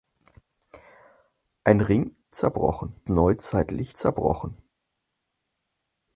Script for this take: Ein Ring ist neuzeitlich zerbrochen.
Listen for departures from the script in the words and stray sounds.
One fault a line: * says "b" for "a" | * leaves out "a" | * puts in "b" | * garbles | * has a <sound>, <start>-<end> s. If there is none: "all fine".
* says "zerbrochen" for "ist"